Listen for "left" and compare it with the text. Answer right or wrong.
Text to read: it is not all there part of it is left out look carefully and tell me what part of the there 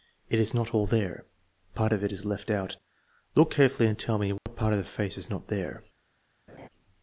right